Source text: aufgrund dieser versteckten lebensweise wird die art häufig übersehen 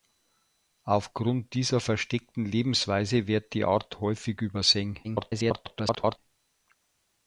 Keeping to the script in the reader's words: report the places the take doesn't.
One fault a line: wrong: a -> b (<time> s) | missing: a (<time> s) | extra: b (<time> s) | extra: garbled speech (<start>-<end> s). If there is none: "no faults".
extra: garbled speech (5.0-6.2 s)